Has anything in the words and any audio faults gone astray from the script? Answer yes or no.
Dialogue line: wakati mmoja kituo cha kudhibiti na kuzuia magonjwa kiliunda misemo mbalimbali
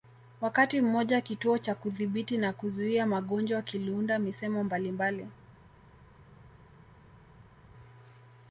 no